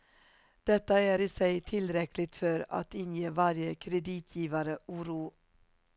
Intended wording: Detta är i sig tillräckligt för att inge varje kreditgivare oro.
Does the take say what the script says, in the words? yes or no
yes